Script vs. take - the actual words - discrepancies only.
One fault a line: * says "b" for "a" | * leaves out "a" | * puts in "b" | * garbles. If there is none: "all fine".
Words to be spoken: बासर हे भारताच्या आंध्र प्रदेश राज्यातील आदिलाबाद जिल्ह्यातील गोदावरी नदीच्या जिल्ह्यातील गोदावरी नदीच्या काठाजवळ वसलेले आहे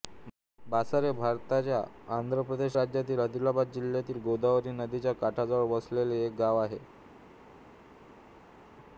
* says "काठाजवळ वसलेले एक गाव" for "जिल्ह्यातील गोदावरी नदीच्या काठाजवळ वसलेले"